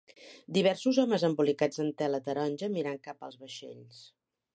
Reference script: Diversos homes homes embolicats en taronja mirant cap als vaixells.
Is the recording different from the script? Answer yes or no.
yes